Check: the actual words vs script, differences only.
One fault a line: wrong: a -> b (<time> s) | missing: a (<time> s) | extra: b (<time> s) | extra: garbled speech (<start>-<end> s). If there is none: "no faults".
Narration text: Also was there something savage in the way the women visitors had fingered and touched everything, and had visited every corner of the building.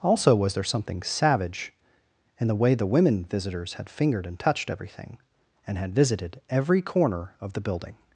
no faults